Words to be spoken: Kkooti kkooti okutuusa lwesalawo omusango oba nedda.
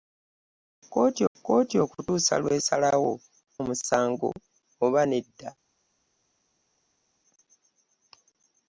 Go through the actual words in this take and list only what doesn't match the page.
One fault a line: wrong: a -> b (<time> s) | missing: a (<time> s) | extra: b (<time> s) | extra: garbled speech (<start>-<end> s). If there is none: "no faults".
no faults